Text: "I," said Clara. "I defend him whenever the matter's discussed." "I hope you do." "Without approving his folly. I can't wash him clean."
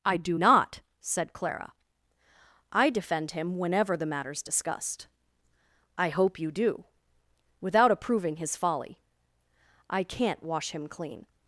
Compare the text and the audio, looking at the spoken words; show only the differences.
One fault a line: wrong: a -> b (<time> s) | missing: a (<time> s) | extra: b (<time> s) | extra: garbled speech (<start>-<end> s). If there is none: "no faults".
extra: do not (0.2 s)